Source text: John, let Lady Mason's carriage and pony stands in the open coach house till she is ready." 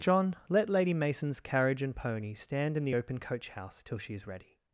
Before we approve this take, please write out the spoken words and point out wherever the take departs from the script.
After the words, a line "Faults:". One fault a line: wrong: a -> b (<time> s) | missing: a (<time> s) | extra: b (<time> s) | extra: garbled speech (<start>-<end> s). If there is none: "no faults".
John, let Lady Mason's carriage and pony stand in the open coach house till she is ready."
Faults:
wrong: stands -> stand (2.3 s)